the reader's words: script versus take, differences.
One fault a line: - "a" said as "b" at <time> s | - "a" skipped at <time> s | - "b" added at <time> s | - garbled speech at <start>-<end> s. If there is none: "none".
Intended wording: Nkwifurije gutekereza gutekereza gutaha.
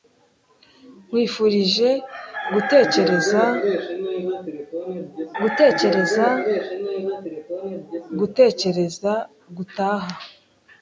- "gutekereza" added at 8.2 s